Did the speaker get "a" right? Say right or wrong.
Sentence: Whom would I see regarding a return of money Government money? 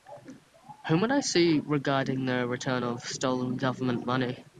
wrong